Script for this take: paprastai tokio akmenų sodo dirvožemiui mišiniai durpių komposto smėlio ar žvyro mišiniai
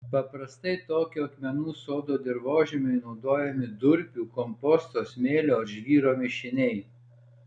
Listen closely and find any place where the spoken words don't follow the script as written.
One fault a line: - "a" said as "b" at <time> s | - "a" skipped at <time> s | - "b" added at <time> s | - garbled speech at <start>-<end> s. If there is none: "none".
- "mišiniai" said as "naudojami" at 3.0 s